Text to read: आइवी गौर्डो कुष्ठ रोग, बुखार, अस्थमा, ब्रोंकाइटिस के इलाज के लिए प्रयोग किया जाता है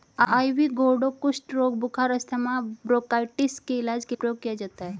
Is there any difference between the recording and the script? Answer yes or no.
yes